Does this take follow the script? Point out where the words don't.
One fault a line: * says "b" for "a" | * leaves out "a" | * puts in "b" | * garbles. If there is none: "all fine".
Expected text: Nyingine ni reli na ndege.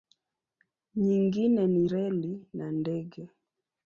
all fine